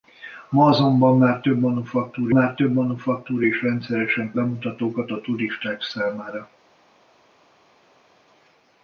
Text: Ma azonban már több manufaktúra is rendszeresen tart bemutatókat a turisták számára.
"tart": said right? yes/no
no